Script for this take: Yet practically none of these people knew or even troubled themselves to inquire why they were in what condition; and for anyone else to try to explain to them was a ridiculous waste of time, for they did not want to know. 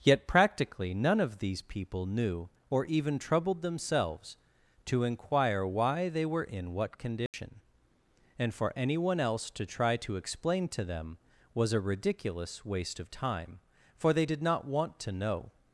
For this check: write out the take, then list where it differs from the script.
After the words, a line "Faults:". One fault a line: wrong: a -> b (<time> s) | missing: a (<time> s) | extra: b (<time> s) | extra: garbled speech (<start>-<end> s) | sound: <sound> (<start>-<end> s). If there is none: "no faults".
Yet practically none of these people knew or even troubled themselves to inquire why they were in what condition; and for anyone else to try to explain to them was a ridiculous waste of time, for they did not want to know.
Faults:
sound: dropout (7.3-7.3 s)